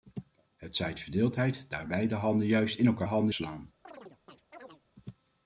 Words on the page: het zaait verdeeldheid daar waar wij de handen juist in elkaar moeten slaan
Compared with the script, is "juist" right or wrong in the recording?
right